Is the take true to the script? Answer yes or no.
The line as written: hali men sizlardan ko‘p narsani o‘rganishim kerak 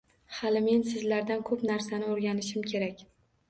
yes